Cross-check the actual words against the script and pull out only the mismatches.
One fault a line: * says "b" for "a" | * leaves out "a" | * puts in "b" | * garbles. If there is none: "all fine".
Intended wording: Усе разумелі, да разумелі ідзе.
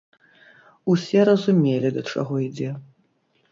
* says "чаго" for "разумелі"